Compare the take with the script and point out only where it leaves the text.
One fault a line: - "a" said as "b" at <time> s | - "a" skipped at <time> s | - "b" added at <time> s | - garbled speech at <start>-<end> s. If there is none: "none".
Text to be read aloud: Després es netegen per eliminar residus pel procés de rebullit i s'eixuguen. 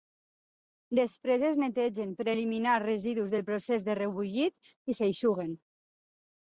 - "pel" said as "del" at 3.3 s